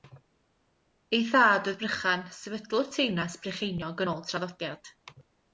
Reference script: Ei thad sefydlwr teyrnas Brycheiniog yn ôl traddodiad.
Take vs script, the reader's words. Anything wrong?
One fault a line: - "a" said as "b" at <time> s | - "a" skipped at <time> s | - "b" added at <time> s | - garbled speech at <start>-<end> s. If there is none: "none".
- "oedd Brychan" added at 1.7 s